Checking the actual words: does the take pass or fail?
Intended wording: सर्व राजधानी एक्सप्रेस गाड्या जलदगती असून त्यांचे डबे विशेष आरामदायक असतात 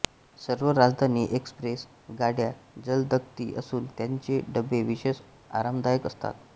pass